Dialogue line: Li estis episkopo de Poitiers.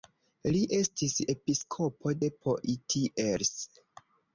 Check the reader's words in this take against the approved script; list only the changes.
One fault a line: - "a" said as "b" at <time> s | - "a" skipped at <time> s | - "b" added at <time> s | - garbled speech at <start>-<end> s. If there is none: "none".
none